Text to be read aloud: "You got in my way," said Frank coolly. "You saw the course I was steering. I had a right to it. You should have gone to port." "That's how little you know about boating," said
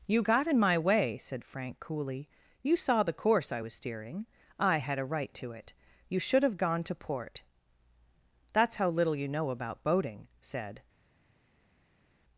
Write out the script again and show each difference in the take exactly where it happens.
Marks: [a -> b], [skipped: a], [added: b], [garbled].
"You got in my way," said Frank coolly. "You saw the course I was steering. I had a right to it. You should have gone to port." "That's how little you know about boating," said